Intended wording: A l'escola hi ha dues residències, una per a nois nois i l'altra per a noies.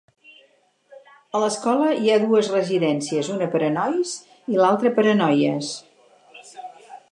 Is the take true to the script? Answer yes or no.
no